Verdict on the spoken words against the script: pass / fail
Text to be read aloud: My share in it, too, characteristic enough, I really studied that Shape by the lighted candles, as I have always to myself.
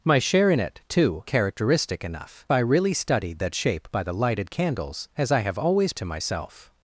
pass